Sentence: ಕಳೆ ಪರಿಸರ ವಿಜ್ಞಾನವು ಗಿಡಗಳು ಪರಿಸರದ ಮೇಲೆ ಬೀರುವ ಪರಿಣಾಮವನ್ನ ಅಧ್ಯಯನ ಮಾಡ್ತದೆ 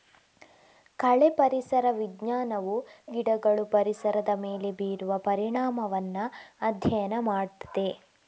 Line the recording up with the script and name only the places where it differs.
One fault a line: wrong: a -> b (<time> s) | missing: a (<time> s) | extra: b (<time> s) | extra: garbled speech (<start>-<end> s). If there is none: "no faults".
no faults